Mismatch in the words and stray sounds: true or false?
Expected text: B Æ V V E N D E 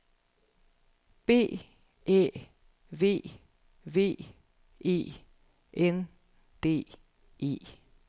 false